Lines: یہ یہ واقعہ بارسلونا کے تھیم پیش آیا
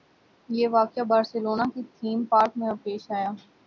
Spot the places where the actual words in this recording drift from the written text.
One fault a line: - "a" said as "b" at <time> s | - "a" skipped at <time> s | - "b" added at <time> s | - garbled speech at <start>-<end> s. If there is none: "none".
- "یہ" skipped at 0.7 s
- "پارک میں" added at 2.2 s